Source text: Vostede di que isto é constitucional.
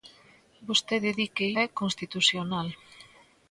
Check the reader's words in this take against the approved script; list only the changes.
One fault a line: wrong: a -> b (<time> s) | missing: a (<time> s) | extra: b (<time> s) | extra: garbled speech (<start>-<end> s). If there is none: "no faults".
missing: isto (1.5 s)